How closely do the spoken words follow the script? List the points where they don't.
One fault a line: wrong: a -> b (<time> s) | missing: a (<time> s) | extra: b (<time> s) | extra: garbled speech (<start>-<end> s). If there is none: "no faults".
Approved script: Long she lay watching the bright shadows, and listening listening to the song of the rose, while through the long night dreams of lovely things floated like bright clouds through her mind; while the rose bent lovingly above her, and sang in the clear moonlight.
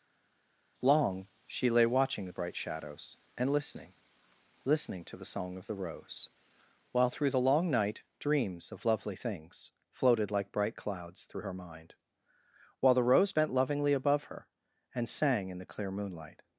no faults